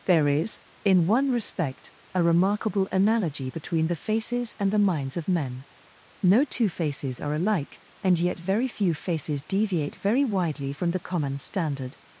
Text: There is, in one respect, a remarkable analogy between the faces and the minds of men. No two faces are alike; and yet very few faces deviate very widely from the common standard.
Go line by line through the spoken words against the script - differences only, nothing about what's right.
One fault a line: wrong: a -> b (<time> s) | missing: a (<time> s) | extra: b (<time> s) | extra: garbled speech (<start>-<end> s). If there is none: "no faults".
no faults